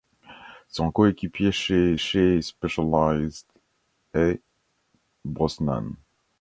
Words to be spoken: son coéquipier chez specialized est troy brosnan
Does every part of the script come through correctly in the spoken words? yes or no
no